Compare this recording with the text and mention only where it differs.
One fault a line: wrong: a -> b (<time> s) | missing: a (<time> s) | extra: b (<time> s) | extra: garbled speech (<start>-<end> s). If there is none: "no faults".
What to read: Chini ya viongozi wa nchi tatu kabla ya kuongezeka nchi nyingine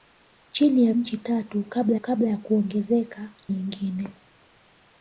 missing: viongozi wa (0.9 s)
extra: kabla (2.0 s)
missing: nchi (3.3 s)